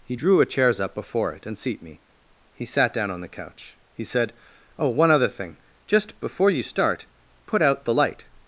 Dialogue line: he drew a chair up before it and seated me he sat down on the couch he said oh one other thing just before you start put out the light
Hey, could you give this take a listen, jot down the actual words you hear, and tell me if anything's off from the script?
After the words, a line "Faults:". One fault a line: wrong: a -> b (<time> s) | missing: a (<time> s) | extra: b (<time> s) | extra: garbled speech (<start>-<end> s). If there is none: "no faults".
he drew a chairs up before it and seat me he sat down on the couch he said oh one other thing just before you start put out the light
Faults:
wrong: chair -> chairs (0.4 s)
wrong: seated -> seat (1.6 s)